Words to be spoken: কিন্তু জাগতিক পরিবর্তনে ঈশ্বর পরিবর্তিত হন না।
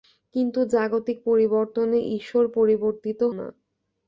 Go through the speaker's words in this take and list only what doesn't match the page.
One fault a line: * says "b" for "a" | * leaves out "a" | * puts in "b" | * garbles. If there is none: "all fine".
* leaves out "হন"